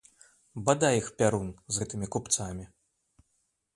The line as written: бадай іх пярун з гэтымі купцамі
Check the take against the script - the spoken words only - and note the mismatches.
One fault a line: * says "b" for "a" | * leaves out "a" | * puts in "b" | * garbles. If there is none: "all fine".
all fine